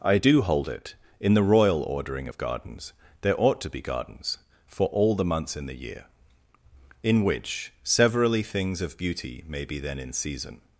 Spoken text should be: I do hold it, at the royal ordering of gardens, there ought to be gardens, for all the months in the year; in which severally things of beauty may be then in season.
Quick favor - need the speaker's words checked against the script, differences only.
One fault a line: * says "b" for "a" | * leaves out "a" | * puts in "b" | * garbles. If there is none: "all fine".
* says "in" for "at"